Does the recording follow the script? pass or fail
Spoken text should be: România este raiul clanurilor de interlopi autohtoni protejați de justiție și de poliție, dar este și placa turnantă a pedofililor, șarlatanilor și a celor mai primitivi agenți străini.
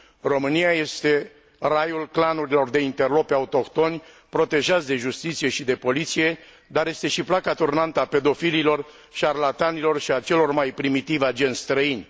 pass